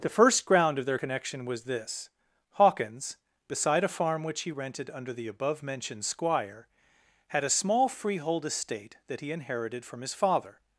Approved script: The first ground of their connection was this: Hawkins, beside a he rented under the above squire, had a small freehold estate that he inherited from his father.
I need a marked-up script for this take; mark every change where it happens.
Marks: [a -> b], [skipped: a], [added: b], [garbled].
The first ground of their connection was this: Hawkins, beside a [added: farm which] he rented under the above [added: mentioned] squire, had a small freehold estate that he inherited from his father.